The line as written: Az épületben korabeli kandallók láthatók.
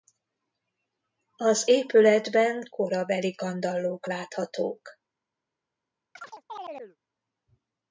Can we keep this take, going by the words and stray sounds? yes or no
no